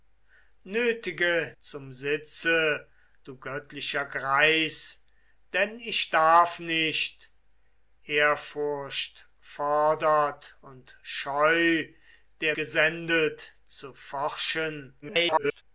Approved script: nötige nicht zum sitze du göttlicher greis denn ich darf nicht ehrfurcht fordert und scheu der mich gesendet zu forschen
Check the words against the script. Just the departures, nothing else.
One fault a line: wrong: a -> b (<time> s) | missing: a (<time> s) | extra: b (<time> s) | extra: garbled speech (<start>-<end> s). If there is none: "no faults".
missing: nicht (1.5 s)
missing: mich (12.5 s)
extra: garbled speech (15.0-15.6 s)